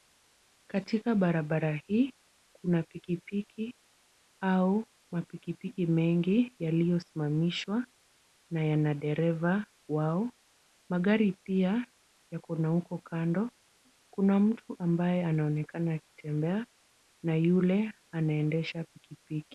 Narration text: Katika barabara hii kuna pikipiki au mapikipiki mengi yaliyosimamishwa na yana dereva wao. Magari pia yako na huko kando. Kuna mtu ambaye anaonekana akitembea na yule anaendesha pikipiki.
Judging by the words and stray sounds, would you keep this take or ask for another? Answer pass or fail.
pass